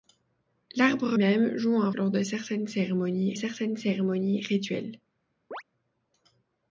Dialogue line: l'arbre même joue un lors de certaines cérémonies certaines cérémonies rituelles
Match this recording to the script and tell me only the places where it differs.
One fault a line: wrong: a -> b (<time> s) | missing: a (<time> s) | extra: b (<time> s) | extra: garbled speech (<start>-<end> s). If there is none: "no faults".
no faults